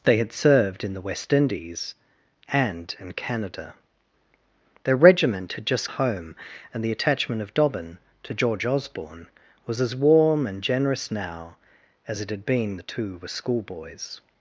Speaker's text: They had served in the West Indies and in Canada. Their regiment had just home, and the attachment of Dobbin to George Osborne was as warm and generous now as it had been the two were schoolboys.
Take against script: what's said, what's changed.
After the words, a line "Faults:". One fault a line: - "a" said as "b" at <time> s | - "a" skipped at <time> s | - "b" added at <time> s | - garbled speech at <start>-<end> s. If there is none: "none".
They had served in the West Indies and in Canada. Their regiment had just home, and the attachment of Dobbin to George Osborne was as warm and generous now as it had been the two were schoolboys.
Faults:
none